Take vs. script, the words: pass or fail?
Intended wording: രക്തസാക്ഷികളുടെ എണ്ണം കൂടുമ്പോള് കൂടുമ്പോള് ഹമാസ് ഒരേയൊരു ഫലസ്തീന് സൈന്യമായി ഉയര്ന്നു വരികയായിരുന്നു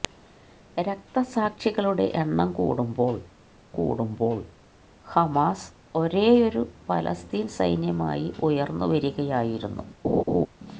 pass